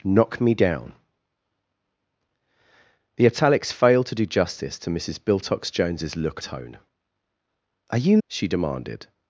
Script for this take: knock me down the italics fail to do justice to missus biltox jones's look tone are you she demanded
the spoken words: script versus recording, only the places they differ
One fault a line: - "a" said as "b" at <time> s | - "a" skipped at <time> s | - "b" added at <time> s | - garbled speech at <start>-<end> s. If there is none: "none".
none